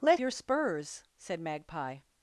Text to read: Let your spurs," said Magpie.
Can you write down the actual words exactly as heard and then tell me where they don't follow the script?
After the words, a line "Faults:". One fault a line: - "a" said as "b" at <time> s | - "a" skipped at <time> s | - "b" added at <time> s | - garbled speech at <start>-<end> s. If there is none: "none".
Let your spurs," said Magpie.
Faults:
none